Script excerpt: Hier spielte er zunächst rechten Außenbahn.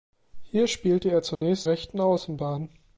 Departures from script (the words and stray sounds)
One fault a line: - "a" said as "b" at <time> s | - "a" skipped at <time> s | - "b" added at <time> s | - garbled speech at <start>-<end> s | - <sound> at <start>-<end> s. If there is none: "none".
- dropout at 1.4-1.4 s